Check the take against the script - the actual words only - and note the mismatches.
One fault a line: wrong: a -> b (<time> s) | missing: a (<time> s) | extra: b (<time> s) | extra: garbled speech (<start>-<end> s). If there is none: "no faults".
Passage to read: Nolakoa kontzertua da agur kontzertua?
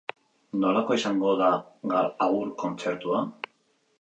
wrong: kontzertua -> izango (1.0 s)